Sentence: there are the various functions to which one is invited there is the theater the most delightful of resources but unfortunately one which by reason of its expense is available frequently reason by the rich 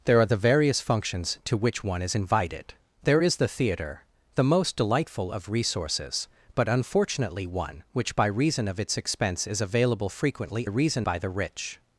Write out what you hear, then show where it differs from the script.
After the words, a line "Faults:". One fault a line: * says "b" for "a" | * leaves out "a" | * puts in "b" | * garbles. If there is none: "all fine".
there are the various functions to which one is invited there is the theater the most delightful of resources but unfortunately one which by reason of its expense is available frequently reason by the rich
Faults:
all fine